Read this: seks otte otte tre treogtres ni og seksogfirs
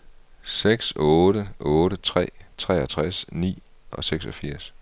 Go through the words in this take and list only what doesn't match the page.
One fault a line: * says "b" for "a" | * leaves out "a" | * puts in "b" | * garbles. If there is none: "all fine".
all fine